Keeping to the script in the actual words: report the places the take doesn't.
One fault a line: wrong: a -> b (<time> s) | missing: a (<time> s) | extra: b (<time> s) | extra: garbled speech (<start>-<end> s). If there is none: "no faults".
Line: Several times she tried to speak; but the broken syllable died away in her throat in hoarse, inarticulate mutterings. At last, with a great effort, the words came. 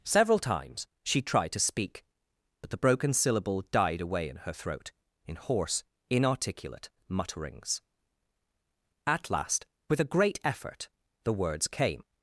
no faults